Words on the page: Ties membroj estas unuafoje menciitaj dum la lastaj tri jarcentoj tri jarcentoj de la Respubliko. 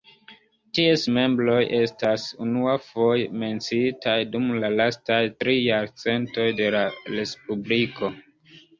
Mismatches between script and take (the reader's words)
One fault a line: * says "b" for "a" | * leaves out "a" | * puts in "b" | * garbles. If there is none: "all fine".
* leaves out "tri jarcentoj"